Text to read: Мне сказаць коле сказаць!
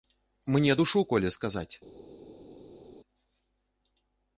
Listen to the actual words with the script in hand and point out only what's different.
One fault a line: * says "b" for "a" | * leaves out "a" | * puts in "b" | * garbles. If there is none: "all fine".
* says "душу" for "сказаць"